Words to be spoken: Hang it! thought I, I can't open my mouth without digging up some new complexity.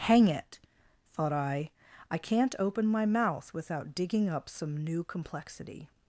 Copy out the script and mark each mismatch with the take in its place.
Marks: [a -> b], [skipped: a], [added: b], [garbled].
Hang it! thought I, I can't open my mouth without digging up some new complexity.